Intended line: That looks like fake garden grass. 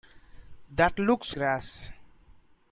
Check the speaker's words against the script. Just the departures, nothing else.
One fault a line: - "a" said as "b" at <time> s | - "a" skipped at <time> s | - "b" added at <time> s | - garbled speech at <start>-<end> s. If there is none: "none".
- "like fake garden" skipped at 1.4 s